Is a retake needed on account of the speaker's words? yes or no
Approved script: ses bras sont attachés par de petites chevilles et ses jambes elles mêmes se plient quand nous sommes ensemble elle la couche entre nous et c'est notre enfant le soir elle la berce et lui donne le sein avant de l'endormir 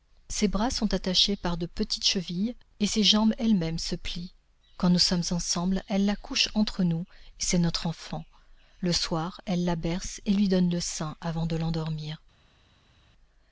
no